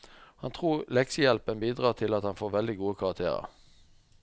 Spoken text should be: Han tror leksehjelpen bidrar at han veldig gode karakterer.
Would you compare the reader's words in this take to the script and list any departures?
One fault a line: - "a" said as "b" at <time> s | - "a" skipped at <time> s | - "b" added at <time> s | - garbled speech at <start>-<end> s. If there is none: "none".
- "til" added at 2.0 s
- "får" added at 2.4 s